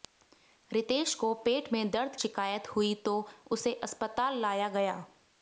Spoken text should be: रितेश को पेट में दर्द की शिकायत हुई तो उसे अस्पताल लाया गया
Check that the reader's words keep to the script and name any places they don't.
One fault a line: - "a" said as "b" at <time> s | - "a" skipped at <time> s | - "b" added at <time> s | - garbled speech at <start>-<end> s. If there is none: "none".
- "की" skipped at 2.1 s